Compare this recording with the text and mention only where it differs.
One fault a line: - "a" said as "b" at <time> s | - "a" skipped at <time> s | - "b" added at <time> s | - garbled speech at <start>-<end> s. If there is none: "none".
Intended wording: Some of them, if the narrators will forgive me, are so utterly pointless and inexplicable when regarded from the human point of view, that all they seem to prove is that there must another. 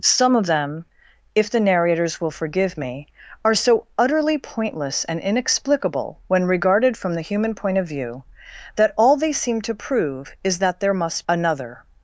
none